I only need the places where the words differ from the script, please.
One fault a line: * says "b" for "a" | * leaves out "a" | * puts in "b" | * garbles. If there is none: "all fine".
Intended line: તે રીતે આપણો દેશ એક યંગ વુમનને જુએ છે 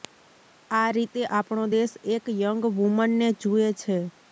* says "આ" for "તે"